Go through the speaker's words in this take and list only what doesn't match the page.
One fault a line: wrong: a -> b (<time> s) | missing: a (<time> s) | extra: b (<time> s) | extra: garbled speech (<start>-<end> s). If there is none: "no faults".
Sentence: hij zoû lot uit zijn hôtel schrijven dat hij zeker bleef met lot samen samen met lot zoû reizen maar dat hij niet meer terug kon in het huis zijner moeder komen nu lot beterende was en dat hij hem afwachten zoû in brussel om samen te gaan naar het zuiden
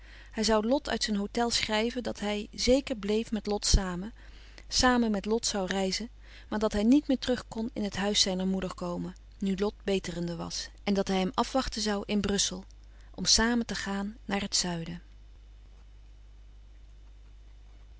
no faults